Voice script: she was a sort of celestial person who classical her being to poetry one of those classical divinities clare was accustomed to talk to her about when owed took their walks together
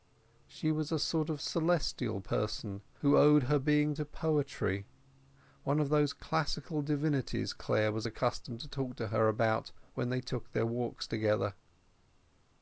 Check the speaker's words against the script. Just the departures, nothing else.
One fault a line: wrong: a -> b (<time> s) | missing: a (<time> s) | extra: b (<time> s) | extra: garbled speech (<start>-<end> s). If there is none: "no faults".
wrong: classical -> owed (3.2 s)
wrong: owed -> they (10.1 s)